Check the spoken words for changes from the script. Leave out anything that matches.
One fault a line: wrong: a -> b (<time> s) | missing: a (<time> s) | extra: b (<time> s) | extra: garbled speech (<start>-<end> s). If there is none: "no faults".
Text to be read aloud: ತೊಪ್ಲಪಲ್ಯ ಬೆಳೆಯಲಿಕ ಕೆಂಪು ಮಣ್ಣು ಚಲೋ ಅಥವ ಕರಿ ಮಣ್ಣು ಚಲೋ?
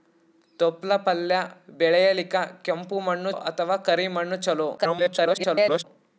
missing: ಚಲೋ (3.3 s)
extra: garbled speech (4.8-5.8 s)